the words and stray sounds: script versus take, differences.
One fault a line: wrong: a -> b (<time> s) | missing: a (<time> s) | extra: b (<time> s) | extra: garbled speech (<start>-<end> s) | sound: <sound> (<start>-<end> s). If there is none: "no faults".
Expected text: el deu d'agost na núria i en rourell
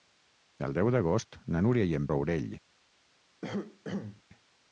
sound: cough (3.4-4.2 s)